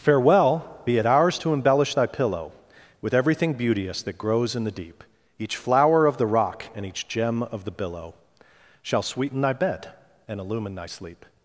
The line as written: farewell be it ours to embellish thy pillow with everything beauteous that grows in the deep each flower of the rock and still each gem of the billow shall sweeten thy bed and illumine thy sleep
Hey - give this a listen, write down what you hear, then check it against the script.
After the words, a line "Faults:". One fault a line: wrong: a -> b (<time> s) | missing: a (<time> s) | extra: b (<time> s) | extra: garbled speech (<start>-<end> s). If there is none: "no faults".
farewell be it ours to embellish thy pillow with everything beauteous that grows in the deep each flower of the rock and each gem of the billow shall sweeten thy bed and illumine thy sleep
Faults:
missing: still (6.9 s)